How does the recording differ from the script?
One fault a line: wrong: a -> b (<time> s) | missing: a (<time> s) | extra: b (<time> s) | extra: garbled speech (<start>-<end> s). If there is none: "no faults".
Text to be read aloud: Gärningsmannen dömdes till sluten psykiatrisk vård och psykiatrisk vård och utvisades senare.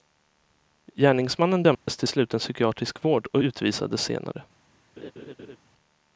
missing: psykiatrisk vård och (3.4 s)